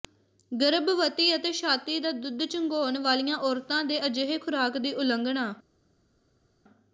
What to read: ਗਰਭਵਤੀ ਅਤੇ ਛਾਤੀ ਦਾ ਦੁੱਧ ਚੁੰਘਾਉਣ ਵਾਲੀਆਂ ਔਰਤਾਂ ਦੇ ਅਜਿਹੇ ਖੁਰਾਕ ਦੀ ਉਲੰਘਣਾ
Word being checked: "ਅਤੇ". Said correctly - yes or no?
yes